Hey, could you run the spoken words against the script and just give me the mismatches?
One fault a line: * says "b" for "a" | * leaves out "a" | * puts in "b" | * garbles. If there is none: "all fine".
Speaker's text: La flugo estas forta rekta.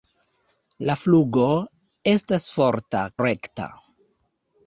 all fine